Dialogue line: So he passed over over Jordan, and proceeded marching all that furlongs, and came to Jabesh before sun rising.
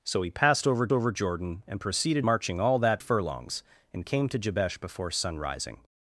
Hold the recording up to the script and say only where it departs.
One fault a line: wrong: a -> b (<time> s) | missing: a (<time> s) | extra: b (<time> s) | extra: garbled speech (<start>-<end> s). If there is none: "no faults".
no faults